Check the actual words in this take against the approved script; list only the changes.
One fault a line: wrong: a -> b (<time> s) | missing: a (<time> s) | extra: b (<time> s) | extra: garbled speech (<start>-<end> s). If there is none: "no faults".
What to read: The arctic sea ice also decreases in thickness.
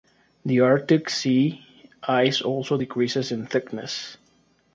no faults